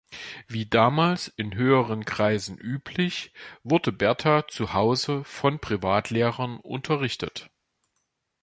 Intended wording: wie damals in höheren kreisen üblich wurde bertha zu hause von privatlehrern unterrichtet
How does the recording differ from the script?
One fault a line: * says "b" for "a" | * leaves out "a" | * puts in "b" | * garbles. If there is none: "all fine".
all fine